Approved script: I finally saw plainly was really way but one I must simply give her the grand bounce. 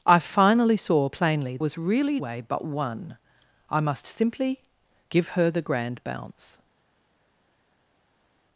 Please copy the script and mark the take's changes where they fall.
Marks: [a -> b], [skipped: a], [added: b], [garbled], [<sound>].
I finally saw plainly was really way but one I must simply give her the grand bounce.